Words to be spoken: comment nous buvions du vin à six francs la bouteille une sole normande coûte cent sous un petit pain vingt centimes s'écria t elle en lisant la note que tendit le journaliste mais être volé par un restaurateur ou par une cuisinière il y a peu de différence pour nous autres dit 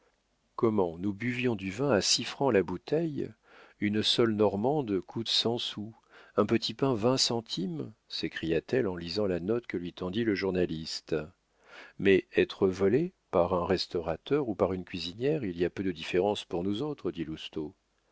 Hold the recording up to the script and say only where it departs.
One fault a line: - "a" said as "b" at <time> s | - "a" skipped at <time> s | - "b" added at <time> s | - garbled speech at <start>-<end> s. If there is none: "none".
- "lui" added at 9.8 s